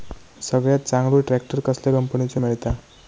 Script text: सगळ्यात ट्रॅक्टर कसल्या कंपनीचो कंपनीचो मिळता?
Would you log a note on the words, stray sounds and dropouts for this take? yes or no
yes